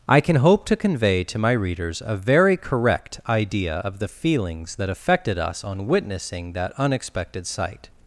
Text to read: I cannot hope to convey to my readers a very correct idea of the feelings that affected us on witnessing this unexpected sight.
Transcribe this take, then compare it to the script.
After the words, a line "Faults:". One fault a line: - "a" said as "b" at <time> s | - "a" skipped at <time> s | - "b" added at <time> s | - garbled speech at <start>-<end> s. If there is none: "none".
I can hope to convey to my readers a very correct idea of the feelings that affected us on witnessing that unexpected sight.
Faults:
- "cannot" said as "can" at 0.2 s
- "this" said as "that" at 6.5 s